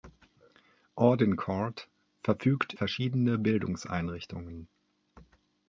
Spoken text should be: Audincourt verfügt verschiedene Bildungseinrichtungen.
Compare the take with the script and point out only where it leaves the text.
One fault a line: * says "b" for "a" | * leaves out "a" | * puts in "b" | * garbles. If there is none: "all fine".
all fine